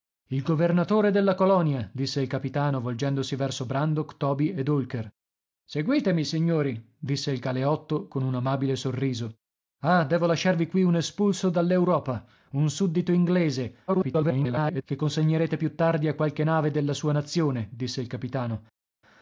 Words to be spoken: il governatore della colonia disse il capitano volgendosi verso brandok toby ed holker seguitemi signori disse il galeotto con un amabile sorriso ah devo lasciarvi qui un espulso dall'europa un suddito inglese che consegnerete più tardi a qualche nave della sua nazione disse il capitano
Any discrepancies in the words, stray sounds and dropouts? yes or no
yes